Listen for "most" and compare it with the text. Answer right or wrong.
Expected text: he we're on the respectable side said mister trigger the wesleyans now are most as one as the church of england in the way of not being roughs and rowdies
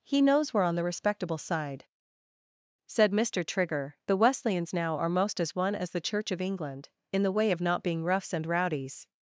right